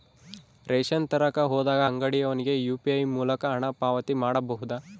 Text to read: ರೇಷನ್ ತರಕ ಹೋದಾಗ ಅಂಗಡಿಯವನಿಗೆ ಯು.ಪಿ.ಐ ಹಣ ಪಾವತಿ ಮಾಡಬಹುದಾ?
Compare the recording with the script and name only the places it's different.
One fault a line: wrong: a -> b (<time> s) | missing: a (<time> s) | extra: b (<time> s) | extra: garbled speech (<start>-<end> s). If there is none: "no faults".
extra: ಮೂಲಕ (3.2 s)